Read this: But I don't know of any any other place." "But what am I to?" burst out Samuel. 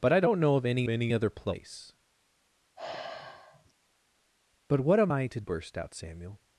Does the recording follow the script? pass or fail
pass